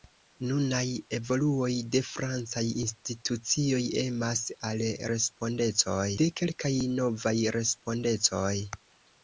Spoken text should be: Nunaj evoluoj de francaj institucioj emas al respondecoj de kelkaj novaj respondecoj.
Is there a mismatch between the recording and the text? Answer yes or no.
no